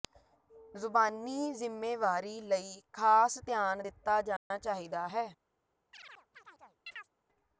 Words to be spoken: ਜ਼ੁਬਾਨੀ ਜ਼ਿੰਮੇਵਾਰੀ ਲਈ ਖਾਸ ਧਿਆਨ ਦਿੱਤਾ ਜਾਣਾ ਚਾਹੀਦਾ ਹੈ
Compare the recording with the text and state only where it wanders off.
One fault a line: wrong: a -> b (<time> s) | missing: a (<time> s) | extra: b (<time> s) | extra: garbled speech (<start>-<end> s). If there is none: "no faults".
no faults